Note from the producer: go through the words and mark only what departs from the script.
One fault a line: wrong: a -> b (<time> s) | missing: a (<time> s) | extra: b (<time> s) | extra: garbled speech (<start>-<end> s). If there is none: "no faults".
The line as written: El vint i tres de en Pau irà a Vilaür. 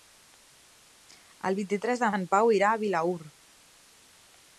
no faults